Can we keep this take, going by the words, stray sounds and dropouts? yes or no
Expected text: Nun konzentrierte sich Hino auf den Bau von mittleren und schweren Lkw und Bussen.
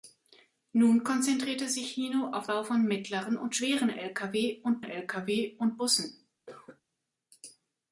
no